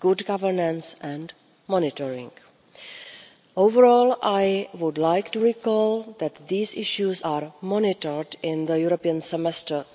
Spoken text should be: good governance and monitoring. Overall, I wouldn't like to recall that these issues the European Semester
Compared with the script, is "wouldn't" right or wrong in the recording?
wrong